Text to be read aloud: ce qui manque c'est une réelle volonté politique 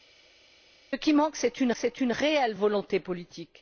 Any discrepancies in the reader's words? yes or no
yes